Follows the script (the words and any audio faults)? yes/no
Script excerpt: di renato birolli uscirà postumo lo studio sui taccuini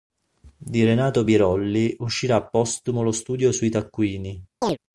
no